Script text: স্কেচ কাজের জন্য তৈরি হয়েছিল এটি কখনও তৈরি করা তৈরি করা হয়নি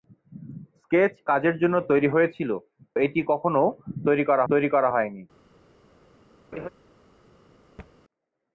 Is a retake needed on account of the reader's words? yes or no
no